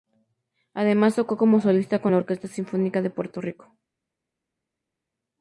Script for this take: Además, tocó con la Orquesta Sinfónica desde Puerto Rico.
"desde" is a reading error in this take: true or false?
true